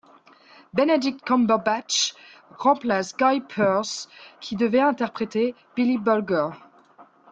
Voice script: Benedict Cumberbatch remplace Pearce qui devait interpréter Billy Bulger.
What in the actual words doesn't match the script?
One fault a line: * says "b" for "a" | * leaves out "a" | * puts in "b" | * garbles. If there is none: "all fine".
* puts in "Guy"